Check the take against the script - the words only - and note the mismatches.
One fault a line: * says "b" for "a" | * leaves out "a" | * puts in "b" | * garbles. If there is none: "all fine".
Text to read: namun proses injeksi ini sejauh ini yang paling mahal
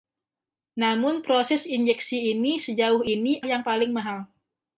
all fine